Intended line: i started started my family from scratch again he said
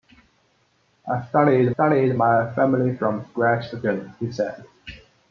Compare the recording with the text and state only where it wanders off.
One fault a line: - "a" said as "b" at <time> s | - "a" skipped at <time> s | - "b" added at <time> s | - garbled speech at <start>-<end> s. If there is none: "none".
none